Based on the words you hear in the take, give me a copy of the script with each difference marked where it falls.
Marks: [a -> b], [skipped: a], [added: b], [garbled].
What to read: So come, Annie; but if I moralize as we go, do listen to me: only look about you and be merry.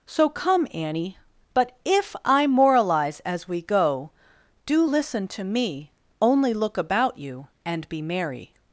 So come, Annie; but if I moralize as we go, do listen to me: only look about you and be merry.